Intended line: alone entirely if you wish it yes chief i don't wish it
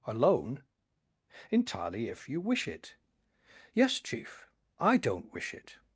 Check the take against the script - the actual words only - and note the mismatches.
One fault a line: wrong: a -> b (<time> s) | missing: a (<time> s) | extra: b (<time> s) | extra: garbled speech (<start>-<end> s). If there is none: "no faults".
no faults